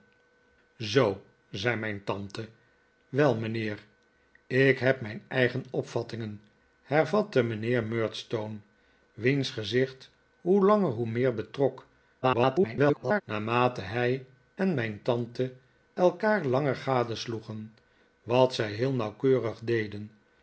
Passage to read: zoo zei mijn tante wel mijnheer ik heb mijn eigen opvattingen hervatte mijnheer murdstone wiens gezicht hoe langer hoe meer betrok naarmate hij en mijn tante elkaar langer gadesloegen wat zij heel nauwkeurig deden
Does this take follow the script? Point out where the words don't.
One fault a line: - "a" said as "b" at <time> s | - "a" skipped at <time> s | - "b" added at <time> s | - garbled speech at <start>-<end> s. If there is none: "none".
- garbled speech at 12.2-13.2 s